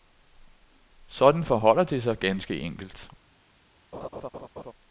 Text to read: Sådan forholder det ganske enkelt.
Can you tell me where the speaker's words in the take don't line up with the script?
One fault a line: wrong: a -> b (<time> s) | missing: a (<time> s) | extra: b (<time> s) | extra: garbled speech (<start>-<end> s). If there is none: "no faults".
extra: sig (2.0 s)